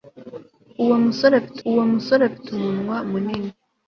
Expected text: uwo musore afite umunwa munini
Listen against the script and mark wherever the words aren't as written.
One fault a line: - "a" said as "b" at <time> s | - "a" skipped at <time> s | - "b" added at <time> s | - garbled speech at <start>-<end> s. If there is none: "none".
- "uwo musore afite" added at 1.7 s